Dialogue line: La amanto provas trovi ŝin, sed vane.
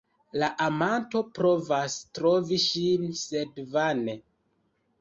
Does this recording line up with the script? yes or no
yes